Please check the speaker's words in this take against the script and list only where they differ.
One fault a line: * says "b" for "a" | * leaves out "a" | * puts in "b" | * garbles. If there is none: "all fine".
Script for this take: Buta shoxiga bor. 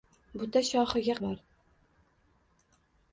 all fine